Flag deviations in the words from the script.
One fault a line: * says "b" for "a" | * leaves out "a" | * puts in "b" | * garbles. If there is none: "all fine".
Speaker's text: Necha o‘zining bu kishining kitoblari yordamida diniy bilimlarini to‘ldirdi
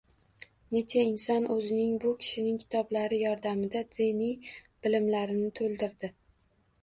* puts in "inson"